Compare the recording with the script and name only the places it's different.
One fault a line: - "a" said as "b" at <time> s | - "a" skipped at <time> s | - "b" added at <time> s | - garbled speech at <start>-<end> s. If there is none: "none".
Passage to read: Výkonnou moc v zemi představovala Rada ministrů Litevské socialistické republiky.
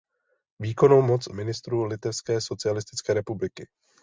- "zemi představovala Rada" skipped at 1.4 s